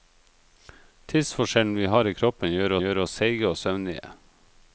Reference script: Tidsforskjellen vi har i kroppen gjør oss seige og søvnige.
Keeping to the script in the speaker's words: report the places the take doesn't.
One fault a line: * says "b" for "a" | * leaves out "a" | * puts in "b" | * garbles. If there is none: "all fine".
* puts in "gjør"